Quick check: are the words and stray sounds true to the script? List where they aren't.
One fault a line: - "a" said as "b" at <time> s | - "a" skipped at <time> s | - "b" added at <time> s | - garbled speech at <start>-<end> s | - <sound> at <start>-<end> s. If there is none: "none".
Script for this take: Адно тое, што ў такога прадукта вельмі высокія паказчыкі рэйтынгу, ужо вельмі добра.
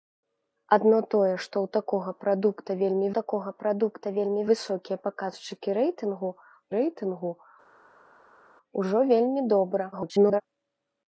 - "такога прадукта вельмі" added at 3.2 s
- "рэйтынгу" added at 6.8 s
- garbled speech at 9.9-10.4 s